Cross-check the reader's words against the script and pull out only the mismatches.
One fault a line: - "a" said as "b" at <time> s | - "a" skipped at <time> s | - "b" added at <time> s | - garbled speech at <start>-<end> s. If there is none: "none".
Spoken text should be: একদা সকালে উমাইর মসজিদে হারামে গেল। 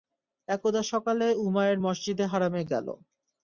none